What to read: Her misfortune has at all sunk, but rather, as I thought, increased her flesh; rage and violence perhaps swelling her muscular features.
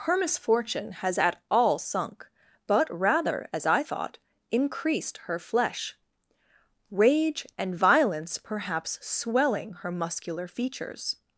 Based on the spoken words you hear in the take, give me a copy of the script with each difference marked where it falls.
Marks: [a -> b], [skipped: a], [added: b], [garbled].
Her misfortune has at all sunk, but rather, as I thought, increased her flesh; rage and violence perhaps swelling her muscular features.